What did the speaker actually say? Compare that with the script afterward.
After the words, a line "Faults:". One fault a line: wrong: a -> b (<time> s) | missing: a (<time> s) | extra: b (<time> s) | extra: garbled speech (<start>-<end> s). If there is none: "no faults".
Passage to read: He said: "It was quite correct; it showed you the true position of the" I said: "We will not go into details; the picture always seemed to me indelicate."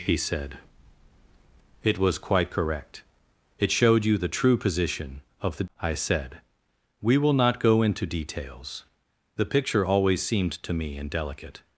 He said: "It was quite correct; it showed you the true position of the" I said: "We will not go into details; the picture always seemed to me indelicate."
Faults:
no faults